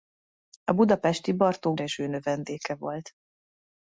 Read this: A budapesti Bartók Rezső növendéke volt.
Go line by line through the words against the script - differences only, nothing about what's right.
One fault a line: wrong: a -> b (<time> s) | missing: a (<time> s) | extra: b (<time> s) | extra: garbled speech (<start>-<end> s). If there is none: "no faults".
no faults